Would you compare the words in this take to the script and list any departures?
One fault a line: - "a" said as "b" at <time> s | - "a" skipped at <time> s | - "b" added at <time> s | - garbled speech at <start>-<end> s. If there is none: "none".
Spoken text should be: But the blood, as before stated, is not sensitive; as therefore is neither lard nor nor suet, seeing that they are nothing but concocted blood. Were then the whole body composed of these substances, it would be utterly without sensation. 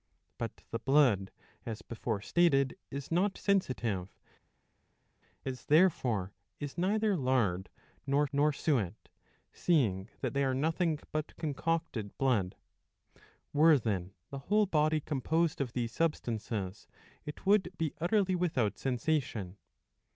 none